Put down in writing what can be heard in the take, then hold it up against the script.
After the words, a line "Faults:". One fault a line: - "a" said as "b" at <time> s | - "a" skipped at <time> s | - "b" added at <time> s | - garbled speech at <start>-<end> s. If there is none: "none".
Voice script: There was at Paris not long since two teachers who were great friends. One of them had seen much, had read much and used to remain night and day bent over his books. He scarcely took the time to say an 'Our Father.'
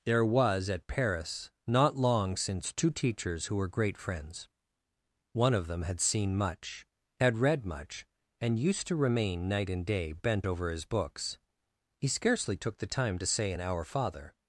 There was at Paris not long since two teachers who were great friends. One of them had seen much, had read much and used to remain night and day bent over his books. He scarcely took the time to say an 'Our Father.'
Faults:
none